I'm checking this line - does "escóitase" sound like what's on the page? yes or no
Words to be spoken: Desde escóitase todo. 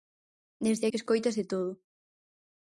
yes